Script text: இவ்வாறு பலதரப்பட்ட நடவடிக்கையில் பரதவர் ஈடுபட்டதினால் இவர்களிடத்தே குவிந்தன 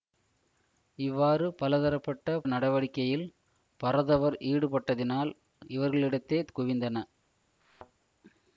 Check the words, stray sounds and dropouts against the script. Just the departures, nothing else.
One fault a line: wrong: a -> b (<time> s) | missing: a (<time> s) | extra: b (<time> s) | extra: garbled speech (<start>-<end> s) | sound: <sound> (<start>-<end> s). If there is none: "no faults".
sound: thud (7.6-7.9 s)